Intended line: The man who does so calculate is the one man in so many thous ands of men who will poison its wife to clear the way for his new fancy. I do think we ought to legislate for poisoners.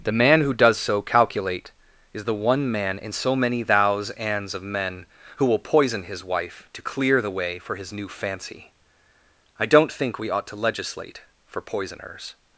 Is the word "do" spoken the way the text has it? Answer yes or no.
no